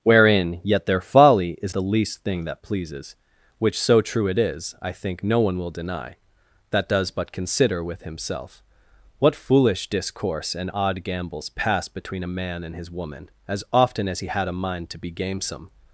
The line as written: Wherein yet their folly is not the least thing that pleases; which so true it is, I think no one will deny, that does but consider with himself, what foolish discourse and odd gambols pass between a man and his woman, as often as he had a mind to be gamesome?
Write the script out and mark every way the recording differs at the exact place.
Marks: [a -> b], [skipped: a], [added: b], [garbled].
Wherein yet their folly is [skipped: not] the least thing that pleases; which so true it is, I think no one will deny, that does but consider with himself, what foolish discourse and odd gambols pass between a man and his woman, as often as he had a mind to be gamesome?